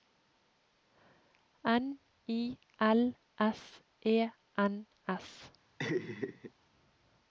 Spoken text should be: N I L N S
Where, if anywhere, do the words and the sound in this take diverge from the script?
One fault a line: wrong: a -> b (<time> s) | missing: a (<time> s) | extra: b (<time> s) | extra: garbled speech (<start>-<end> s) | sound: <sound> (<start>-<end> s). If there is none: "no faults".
extra: S E (3.4 s)
sound: laugh (5.8-6.5 s)